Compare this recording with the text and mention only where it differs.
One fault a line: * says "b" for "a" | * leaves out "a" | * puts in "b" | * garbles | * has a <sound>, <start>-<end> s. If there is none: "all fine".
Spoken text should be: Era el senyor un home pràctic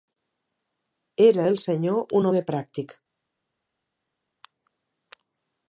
all fine